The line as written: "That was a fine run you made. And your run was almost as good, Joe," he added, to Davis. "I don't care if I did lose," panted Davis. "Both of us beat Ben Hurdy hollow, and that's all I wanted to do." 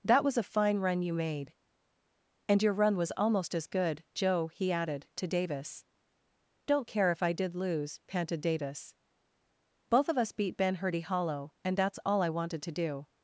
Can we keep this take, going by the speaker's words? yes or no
no